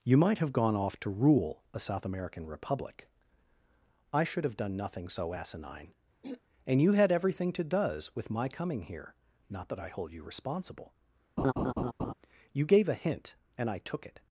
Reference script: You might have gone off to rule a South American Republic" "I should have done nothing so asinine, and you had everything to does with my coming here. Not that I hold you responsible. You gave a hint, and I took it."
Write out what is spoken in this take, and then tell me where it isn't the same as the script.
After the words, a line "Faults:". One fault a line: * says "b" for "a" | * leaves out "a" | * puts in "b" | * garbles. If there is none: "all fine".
You might have gone off to rule a South American Republic" "I should have done nothing so asinine, and you had everything to does with my coming here. Not that I hold you responsible. You gave a hint, and I took it."
Faults:
all fine